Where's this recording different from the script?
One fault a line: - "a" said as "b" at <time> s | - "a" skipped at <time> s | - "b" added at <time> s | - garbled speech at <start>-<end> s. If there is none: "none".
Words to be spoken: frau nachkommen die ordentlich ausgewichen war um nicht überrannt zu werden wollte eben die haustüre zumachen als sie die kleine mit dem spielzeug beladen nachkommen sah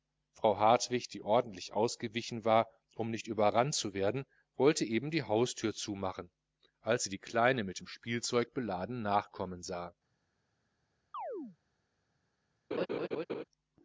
- "nachkommen" said as "hartwig" at 0.6 s